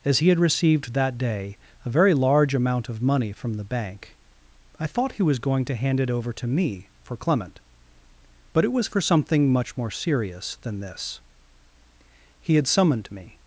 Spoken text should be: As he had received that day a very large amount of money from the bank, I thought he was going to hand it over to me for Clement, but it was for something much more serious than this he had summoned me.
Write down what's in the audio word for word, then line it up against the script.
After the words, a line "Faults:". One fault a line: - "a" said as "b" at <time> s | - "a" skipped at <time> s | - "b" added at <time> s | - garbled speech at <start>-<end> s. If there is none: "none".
As he had received that day a very large amount of money from the bank, I thought he was going to hand it over to me for Clement, but it was for something much more serious than this he had summoned me.
Faults:
none